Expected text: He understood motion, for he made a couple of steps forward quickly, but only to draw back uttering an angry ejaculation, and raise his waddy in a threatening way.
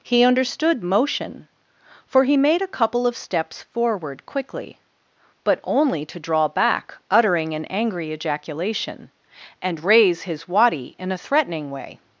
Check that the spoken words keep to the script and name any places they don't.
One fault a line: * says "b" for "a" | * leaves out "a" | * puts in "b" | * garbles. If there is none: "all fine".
all fine